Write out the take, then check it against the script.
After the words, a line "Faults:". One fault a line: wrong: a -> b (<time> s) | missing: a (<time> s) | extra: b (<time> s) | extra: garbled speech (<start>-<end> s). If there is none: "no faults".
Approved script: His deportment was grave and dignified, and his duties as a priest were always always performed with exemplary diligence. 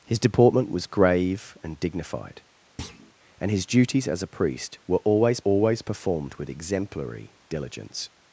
His deportment was grave and dignified, and his duties as a priest were always always performed with exemplary diligence.
Faults:
no faults